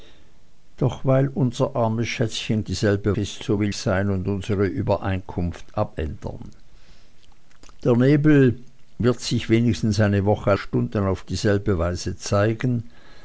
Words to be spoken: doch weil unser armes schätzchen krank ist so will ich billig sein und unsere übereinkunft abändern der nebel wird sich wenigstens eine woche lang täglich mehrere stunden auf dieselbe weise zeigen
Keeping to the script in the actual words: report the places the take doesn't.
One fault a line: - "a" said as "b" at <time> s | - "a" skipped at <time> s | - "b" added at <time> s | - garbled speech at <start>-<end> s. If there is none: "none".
- "krank" said as "dieselbe" at 2.6 s
- "ich billig" skipped at 3.7 s
- "lang täglich mehrere" skipped at 10.5 s